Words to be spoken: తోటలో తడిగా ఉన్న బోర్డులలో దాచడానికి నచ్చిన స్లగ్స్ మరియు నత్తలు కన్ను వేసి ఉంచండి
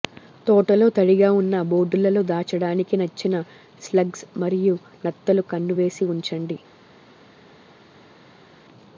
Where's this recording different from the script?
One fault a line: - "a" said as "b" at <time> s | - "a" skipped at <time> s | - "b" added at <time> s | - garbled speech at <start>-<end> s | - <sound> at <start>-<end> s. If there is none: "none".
none